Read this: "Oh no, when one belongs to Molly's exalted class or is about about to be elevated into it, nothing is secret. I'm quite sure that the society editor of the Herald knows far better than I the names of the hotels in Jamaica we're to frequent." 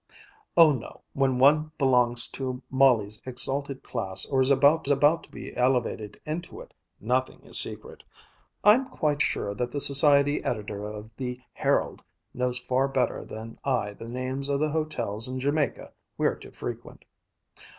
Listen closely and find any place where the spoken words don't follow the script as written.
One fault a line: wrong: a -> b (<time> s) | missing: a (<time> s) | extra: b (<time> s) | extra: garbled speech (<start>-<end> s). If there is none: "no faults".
no faults